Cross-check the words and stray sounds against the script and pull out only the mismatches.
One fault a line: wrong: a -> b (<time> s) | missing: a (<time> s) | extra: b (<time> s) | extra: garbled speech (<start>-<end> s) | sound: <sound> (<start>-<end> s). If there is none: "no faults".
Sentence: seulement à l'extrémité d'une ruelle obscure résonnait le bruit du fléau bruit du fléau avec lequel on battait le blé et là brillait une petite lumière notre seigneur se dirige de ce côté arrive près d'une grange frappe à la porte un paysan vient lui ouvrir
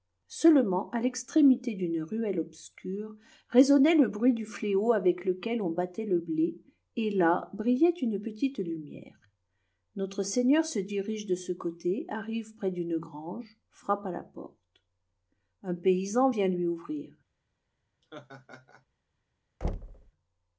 missing: bruit du fléau (4.9 s)
sound: laugh (18.0-18.9 s)
sound: thud (19.6-20.1 s)